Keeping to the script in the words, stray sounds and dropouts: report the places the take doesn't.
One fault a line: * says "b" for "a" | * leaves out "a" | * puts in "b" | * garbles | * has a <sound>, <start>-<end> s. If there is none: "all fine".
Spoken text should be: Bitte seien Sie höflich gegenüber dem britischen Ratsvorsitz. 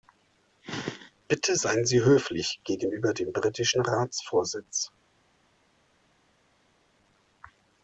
all fine